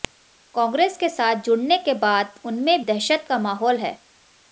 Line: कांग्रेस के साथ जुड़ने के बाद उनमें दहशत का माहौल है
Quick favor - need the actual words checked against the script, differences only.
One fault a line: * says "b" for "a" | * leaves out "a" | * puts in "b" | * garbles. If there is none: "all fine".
all fine